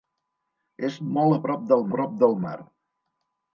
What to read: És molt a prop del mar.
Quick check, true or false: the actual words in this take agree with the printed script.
false